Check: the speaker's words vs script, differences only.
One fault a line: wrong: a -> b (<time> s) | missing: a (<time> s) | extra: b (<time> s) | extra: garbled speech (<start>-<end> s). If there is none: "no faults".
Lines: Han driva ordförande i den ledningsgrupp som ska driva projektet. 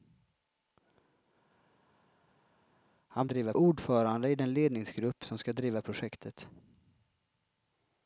no faults